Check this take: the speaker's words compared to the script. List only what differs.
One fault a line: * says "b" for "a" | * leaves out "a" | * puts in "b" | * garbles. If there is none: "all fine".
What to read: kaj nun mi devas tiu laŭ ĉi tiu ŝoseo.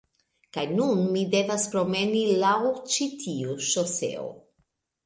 * says "promeni" for "tiu"